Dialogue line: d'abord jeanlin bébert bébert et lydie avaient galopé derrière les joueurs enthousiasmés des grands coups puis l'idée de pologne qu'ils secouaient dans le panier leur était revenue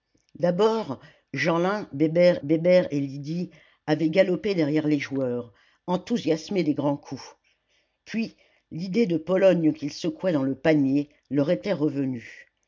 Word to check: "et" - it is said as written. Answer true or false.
true